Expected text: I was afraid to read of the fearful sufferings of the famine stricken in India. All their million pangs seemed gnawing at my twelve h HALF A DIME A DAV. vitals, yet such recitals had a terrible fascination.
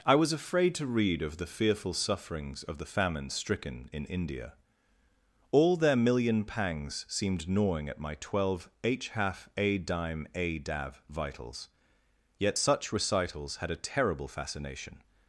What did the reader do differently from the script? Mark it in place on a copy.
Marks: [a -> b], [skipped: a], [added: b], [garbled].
I was afraid to read of the fearful sufferings of the famine stricken in India. All their million pangs seemed gnawing at my twelve h HALF A DIME A DAV. vitals, yet such recitals had a terrible fascination.